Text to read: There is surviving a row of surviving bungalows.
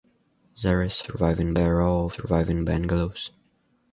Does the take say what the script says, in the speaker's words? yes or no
yes